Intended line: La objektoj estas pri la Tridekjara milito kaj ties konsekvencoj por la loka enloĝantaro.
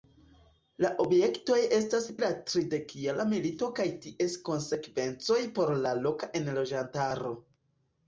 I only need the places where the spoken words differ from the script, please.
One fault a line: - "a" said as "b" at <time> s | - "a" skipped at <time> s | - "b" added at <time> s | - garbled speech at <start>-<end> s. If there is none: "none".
- "pri" skipped at 2.0 s